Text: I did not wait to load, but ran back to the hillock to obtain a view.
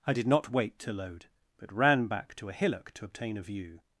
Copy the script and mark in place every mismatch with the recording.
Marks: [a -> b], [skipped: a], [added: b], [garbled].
I did not wait to load, but ran back to [the -> a] hillock to obtain a view.